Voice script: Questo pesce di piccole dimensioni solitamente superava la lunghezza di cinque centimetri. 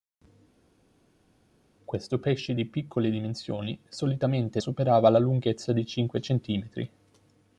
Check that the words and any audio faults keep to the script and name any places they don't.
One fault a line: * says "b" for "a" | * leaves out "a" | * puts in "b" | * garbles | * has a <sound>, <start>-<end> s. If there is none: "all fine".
all fine